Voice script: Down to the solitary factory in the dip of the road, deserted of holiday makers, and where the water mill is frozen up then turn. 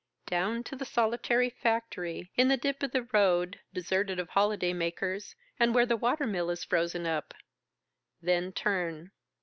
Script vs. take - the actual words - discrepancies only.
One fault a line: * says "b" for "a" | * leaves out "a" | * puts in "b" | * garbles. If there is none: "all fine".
all fine